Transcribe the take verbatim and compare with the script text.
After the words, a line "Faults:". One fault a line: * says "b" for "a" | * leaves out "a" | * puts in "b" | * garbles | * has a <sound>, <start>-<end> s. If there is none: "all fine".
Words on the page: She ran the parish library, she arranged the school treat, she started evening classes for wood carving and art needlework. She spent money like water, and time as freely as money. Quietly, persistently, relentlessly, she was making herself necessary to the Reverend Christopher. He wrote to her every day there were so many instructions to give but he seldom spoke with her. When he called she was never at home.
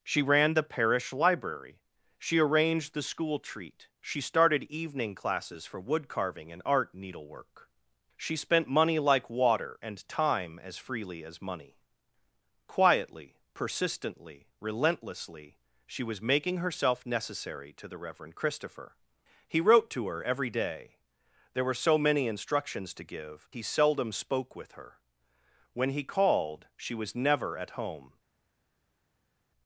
She ran the parish library, she arranged the school treat, she started evening classes for wood carving and art needlework. She spent money like water, and time as freely as money. Quietly, persistently, relentlessly, she was making herself necessary to the Reverend Christopher. He wrote to her every day there were so many instructions to give he seldom spoke with her. When he called she was never at home.
Faults:
* leaves out "but"